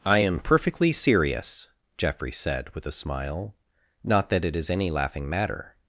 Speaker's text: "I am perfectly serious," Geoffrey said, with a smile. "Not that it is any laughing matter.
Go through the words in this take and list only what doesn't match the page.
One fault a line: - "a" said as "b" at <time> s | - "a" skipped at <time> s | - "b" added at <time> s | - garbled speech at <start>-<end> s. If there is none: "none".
none